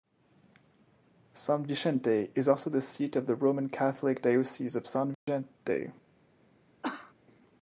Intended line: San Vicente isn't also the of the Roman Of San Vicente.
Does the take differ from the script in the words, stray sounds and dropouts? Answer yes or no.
yes